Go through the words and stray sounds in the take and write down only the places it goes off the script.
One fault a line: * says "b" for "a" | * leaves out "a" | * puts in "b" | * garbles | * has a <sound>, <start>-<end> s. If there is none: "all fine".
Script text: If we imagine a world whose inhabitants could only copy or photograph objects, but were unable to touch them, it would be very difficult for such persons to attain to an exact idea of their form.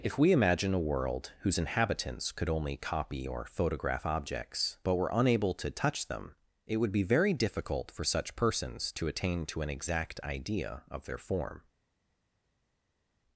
all fine